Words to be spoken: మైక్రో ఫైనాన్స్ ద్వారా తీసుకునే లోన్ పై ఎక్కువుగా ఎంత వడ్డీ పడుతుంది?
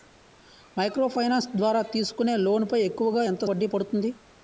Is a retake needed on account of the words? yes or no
no